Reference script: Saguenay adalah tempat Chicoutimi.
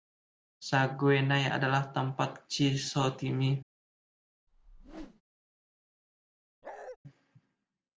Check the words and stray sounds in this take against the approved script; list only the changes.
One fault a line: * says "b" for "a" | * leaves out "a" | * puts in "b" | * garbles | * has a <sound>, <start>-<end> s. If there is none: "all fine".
* has a whoosh, 4.5-5.2 s
* has a bark, 6.6-7.0 s